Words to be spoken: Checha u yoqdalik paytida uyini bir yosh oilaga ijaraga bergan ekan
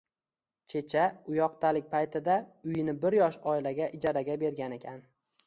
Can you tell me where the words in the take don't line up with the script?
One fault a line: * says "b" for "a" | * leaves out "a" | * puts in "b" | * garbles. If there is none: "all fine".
all fine